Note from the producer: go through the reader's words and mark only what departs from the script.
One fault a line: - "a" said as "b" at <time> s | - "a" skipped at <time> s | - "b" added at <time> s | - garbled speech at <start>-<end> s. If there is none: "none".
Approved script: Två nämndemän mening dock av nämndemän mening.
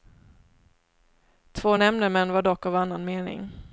- "mening" said as "var" at 2.3 s
- "nämndemän" said as "annan" at 2.7 s